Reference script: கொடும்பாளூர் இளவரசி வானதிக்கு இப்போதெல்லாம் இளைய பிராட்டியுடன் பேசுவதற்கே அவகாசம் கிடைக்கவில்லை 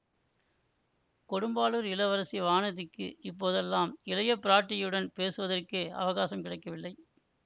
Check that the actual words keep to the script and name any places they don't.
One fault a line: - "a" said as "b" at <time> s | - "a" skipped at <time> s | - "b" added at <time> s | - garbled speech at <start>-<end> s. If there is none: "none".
none